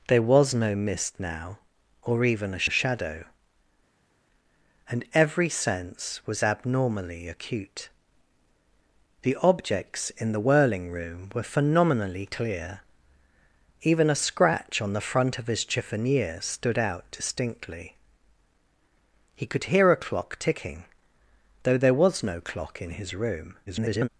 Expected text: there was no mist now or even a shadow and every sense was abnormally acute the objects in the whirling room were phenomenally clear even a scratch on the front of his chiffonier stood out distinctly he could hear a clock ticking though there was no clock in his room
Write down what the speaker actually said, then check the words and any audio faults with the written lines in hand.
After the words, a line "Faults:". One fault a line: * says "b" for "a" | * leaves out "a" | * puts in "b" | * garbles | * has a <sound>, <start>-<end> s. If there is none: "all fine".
there was no mist now or even a a shadow and every sense was abnormally acute the objects in the whirling room were phenomenally clear even a scratch on the front of his chiffonier stood out distinctly he could hear a clock ticking though there was no clock in his room [garbled]
Faults:
* puts in "a"
* garbles